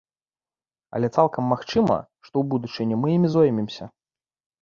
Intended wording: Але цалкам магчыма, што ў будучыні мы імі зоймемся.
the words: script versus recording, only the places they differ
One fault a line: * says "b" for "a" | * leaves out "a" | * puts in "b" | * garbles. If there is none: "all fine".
all fine